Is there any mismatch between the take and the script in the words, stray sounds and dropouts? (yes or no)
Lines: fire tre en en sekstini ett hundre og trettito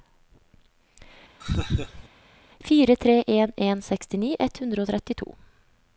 yes